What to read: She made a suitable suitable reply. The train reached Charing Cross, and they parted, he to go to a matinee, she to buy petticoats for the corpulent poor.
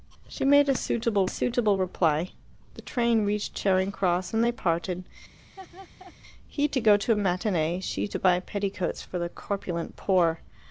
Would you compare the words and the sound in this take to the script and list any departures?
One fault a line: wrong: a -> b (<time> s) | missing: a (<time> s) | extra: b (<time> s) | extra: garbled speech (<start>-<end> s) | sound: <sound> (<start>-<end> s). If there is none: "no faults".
sound: laugh (5.4-6.1 s)